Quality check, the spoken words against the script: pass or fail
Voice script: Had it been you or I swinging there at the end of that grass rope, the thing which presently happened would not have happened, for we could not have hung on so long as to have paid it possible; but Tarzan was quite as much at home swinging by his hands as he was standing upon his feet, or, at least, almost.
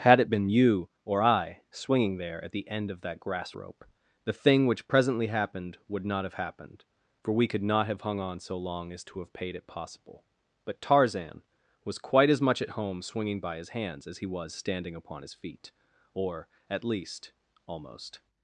pass